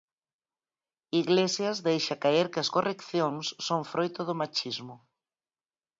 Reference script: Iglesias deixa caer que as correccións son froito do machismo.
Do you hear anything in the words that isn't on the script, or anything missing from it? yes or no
no